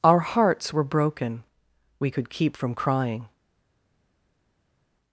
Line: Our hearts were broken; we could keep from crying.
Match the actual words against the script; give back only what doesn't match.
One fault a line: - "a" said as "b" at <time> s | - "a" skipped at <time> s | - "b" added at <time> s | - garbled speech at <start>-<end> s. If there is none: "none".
none